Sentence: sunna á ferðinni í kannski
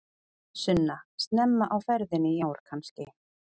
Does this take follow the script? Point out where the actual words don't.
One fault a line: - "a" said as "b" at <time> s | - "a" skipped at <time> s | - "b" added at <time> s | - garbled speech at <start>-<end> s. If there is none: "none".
- "snemma" added at 1.2 s
- "ár" added at 2.4 s